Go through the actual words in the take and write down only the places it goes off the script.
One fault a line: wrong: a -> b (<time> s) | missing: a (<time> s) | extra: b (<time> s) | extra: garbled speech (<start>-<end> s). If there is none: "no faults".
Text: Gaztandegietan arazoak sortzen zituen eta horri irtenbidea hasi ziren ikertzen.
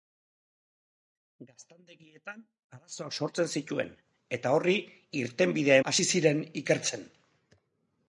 no faults